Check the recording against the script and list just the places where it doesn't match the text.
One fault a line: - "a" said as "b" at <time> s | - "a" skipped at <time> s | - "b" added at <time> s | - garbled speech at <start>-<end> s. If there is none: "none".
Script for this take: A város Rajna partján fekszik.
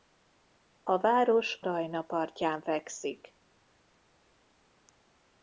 none